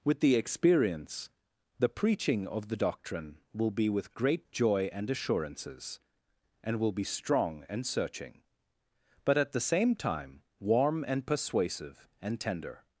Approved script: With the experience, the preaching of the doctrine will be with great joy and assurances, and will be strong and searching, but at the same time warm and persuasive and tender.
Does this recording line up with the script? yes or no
yes